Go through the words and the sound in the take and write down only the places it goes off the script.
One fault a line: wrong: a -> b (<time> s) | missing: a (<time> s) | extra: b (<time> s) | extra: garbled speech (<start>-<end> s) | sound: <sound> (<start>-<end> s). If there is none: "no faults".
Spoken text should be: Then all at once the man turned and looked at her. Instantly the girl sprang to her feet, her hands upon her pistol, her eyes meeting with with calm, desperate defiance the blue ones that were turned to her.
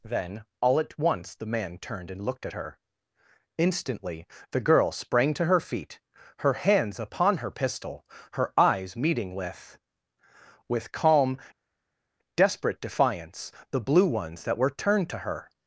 no faults